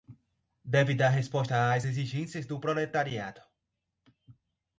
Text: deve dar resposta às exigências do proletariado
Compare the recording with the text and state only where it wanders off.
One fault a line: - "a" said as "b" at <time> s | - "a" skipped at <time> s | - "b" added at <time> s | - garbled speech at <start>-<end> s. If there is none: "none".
none